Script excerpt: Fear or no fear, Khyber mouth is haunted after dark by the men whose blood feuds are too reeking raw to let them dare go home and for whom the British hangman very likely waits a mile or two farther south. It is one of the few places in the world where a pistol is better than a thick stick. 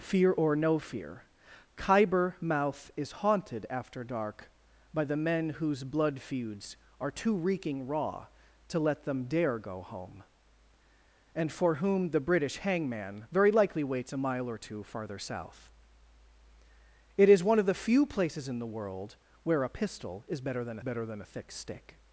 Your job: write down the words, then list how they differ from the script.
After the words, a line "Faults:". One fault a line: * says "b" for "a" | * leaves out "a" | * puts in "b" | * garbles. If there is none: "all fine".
Fear or no fear, Khyber mouth is haunted after dark by the men whose blood feuds are too reeking raw to let them dare go home and for whom the British hangman very likely waits a mile or two farther south. It is one of the few places in the world where a pistol is better than better than a thick stick.
Faults:
* puts in "better than"